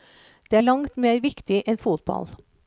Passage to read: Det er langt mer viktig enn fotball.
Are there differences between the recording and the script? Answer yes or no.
no